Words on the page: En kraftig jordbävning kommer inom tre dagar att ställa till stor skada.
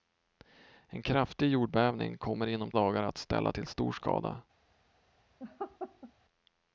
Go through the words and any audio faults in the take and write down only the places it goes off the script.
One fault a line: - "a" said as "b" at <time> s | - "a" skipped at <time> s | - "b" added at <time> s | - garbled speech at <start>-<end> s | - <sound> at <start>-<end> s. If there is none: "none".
- "tre" skipped at 2.7 s
- laugh at 5.4-6.1 s